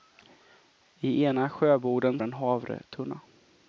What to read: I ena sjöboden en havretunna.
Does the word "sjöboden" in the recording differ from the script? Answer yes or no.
no